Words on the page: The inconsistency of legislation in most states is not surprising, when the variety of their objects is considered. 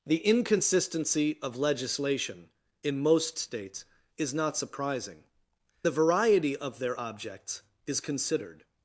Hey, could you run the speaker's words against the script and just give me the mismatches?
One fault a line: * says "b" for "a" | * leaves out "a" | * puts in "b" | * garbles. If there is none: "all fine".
* leaves out "when"